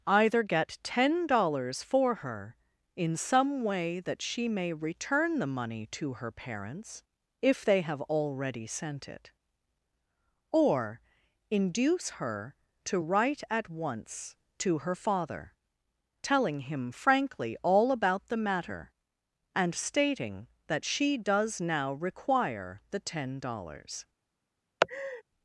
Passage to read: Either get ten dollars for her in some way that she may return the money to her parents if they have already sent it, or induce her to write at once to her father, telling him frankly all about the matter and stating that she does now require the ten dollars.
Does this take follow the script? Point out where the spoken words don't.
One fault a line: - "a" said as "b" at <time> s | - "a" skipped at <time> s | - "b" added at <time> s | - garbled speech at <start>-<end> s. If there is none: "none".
none